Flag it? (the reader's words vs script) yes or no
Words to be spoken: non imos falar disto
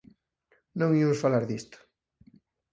no